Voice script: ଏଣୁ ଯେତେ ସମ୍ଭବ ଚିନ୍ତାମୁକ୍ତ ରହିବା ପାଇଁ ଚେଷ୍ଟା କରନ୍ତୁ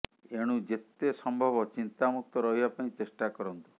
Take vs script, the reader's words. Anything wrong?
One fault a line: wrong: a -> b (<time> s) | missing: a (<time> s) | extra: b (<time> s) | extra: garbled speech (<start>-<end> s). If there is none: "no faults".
no faults